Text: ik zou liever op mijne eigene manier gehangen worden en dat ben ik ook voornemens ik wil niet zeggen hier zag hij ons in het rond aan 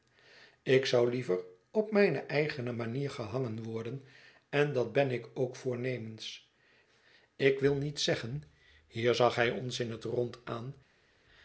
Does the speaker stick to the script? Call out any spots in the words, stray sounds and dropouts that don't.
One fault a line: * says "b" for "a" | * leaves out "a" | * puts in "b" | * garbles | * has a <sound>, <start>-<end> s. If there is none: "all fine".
all fine